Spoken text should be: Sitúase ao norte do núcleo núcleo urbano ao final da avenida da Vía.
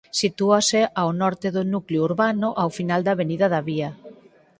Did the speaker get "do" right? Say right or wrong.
right